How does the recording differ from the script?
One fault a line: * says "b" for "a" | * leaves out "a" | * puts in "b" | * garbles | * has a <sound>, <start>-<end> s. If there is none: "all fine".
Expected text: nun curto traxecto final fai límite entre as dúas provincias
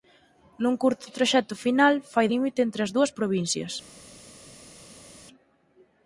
all fine